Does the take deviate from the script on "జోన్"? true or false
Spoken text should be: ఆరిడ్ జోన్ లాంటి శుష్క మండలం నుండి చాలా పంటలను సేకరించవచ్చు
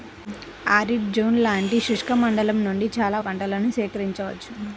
false